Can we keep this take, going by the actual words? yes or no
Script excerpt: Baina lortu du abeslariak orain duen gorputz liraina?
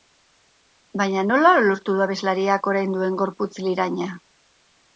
no